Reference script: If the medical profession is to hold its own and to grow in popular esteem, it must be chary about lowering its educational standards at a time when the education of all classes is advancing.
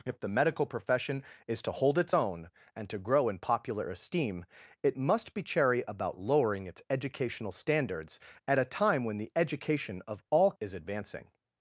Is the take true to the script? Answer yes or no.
no